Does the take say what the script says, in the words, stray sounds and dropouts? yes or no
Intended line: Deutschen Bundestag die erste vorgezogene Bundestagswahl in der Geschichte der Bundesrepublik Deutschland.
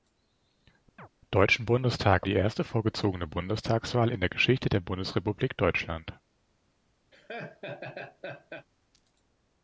no